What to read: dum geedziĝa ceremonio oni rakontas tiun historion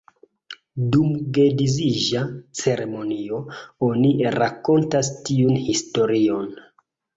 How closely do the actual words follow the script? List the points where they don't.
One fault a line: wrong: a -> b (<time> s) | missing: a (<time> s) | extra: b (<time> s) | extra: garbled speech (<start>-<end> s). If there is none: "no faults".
no faults